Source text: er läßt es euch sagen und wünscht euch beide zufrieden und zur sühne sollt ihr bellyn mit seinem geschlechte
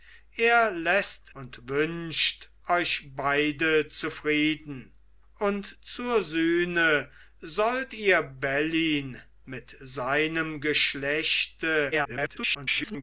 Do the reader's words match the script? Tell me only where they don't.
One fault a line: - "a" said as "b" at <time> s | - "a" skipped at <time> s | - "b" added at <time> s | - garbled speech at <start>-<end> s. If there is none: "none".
- "es euch sagen" skipped at 1.4 s
- garbled speech at 11.9-13.0 s